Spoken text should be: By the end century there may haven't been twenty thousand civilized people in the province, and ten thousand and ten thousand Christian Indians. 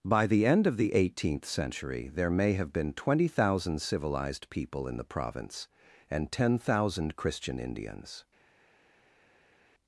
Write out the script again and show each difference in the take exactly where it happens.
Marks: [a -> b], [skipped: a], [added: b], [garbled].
By the end [added: of the eighteenth] century there may [haven't -> have] been twenty thousand civilized people in the province, and ten thousand [skipped: and ten thousand] Christian Indians.